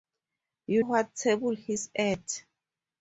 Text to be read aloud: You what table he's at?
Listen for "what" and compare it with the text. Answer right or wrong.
right